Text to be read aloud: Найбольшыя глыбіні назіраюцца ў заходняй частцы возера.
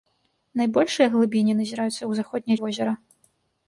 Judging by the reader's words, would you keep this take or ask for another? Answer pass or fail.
fail